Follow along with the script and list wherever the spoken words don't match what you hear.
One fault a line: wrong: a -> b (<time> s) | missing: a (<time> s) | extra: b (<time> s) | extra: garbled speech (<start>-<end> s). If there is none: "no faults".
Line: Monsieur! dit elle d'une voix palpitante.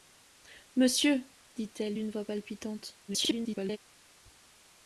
extra: garbled speech (3.1-3.8 s)